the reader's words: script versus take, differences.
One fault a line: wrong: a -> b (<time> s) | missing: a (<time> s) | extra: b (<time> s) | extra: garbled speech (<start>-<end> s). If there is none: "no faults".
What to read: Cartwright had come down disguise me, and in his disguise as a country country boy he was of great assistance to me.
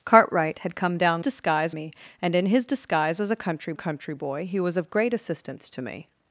no faults